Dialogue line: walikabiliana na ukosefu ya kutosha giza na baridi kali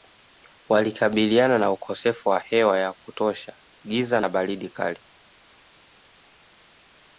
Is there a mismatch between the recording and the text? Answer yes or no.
yes